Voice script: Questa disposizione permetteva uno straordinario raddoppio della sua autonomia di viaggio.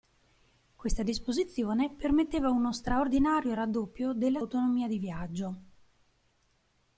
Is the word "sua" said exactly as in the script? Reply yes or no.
no